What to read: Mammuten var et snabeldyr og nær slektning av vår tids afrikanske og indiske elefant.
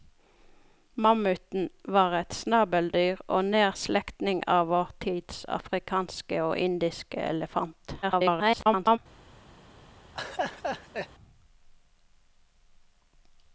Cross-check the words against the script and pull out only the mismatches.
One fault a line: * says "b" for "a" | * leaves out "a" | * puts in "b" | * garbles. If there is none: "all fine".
* garbles